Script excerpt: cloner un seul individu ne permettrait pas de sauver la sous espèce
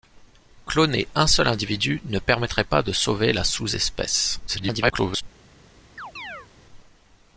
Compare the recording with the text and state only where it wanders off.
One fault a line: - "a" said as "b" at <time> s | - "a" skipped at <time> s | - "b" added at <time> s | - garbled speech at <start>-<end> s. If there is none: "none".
- garbled speech at 4.5-5.2 s